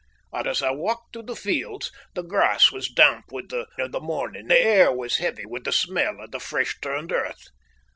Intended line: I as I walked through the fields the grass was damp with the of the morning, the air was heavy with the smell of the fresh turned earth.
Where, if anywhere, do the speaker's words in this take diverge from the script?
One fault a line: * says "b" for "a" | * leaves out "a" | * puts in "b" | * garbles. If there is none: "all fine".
all fine